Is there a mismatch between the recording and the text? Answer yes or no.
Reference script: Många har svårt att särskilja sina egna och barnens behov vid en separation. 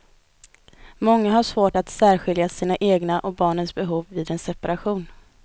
no